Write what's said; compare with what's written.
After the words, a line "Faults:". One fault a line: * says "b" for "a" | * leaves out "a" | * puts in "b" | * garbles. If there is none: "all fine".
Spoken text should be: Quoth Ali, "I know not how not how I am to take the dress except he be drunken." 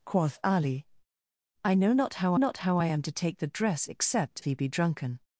Quoth Ali, "I know not how not how I am to take the dress except he be drunken."
Faults:
all fine